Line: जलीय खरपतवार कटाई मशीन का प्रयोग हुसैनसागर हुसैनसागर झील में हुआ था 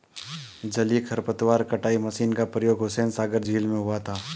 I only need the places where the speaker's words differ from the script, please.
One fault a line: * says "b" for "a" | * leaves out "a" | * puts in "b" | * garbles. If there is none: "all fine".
* leaves out "हुसैनसागर"